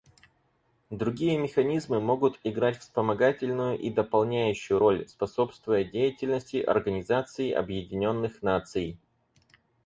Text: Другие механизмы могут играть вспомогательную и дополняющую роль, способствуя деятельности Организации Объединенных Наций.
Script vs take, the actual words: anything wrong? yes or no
no